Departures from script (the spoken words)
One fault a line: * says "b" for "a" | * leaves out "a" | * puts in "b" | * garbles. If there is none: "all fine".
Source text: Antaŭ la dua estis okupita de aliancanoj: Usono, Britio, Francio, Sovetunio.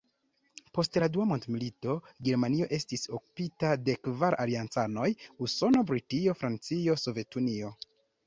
* says "Post" for "Antaŭ"
* puts in "mondmilito Germanio"
* puts in "kvar"